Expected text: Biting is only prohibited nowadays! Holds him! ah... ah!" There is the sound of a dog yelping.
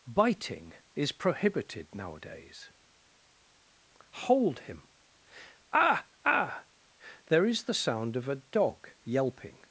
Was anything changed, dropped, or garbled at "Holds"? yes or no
yes